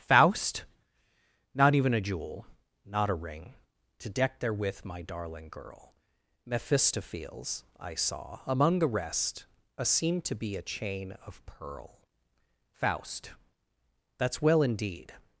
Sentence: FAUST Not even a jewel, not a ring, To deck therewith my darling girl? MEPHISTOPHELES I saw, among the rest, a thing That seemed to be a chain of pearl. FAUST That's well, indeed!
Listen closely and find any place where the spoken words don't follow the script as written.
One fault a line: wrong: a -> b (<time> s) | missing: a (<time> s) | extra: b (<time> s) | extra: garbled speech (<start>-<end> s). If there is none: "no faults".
missing: thing That (9.8 s)